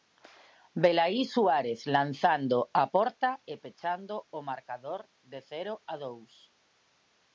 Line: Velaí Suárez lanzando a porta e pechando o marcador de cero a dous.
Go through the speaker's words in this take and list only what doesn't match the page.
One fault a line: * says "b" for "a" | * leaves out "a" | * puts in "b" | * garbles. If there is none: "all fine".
all fine